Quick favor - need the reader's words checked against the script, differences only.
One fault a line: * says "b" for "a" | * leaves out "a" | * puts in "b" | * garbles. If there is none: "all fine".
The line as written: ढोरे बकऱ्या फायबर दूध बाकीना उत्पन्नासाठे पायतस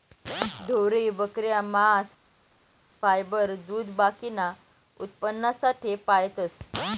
* puts in "मांस"